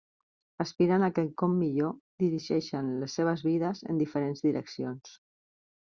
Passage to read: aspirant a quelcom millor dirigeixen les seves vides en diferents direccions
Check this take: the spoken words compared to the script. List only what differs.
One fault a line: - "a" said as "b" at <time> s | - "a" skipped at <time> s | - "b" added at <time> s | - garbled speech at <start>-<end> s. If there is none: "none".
none